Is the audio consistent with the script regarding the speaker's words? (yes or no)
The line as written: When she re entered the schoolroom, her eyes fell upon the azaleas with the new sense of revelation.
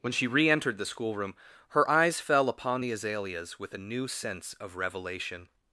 no